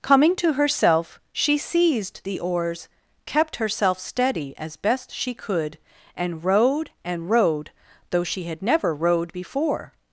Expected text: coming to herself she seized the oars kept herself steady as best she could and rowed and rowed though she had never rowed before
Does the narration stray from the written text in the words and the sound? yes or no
no